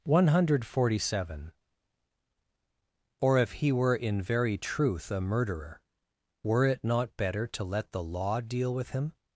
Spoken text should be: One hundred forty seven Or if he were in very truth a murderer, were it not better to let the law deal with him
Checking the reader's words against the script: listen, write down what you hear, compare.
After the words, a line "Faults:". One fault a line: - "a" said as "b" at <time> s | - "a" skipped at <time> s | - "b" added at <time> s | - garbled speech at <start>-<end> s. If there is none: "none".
One hundred forty seven Or if he were in very truth a murderer, were it not better to let the law deal with him
Faults:
none